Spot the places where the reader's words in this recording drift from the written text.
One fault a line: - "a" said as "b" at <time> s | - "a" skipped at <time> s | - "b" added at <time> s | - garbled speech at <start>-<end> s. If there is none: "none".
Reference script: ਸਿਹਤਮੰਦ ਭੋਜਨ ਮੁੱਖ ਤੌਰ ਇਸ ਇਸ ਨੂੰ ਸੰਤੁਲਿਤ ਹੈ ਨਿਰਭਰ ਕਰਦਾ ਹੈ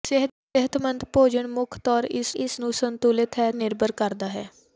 none